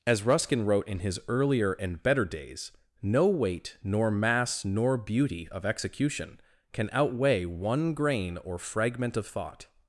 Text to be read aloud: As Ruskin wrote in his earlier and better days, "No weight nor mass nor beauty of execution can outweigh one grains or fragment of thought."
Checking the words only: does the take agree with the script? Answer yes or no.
no